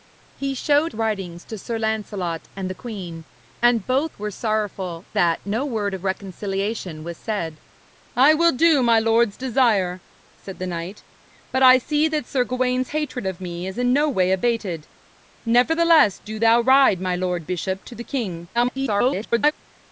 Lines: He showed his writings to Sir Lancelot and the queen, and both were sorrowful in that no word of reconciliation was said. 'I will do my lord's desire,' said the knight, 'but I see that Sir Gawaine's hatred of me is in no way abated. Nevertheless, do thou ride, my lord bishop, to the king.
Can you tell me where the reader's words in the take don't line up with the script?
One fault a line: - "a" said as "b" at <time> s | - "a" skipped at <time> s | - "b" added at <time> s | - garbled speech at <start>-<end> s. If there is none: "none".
- "his" skipped at 0.9 s
- "in" skipped at 5.1 s
- garbled speech at 18.5-19.5 s